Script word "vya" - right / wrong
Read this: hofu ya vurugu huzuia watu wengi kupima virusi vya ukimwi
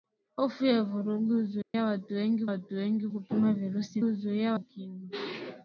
wrong